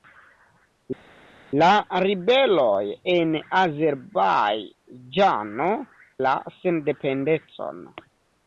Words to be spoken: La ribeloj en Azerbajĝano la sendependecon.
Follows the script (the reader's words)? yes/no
yes